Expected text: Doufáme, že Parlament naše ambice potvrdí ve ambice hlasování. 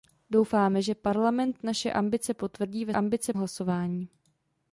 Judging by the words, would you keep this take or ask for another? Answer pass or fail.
pass